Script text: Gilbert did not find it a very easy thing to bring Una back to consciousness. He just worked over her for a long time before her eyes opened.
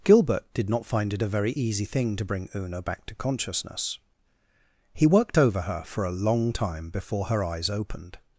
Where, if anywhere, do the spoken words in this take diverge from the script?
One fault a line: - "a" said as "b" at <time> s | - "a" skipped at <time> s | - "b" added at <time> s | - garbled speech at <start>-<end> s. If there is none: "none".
- "just" skipped at 5.1 s